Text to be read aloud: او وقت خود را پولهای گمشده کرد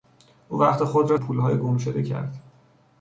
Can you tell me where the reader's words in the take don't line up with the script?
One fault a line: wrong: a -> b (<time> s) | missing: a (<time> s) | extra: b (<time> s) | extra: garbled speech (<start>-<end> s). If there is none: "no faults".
no faults